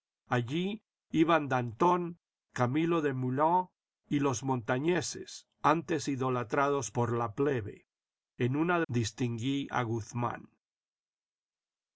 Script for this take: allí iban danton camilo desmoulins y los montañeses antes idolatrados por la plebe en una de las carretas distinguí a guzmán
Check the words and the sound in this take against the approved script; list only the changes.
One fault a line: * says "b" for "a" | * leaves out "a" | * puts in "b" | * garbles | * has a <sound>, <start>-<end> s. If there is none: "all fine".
* leaves out "las carretas"